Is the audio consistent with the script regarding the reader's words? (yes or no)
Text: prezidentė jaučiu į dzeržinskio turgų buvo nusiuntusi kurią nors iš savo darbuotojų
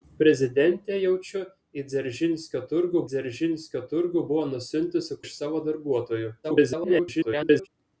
no